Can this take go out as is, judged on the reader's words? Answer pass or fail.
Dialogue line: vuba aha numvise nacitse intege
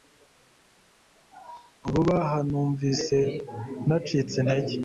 pass